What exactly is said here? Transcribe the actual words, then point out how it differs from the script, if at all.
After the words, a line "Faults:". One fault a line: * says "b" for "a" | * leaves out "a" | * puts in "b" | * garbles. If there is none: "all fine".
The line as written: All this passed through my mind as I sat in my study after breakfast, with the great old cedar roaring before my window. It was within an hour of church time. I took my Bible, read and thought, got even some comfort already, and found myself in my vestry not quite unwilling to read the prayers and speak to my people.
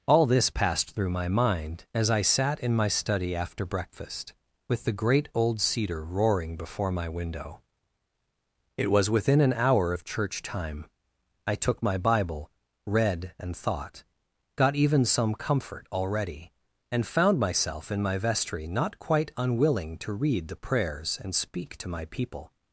All this passed through my mind as I sat in my study after breakfast, with the great old cedar roaring before my window. It was within an hour of church time. I took my Bible, read and thought, got even some comfort already, and found myself in my vestry not quite unwilling to read the prayers and speak to my people.
Faults:
all fine